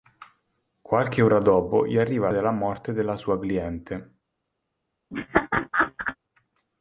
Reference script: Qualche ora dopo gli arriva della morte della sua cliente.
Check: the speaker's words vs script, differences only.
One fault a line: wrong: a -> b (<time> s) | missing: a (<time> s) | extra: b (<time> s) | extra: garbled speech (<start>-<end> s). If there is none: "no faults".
no faults